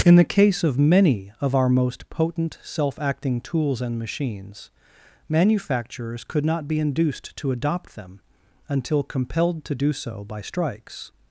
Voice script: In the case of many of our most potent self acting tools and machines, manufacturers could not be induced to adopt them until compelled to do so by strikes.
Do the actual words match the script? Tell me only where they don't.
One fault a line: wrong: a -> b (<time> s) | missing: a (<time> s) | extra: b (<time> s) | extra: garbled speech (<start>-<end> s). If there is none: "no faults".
no faults